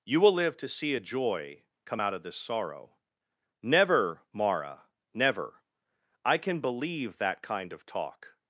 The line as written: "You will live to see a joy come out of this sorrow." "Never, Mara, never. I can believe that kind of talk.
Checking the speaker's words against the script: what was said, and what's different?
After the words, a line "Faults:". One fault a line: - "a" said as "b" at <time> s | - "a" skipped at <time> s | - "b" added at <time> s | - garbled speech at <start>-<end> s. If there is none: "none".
"You will live to see a joy come out of this sorrow." "Never, Mara, never. I can believe that kind of talk.
Faults:
none